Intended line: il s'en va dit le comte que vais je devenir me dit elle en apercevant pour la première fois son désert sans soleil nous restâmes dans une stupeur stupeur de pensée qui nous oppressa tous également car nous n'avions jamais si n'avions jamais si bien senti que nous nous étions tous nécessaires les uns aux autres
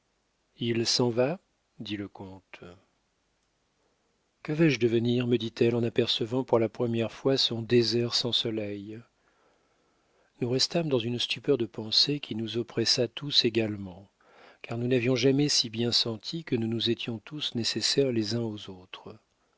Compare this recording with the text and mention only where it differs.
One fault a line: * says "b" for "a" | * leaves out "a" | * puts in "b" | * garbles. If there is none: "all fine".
* leaves out "stupeur"
* leaves out "n'avions jamais si"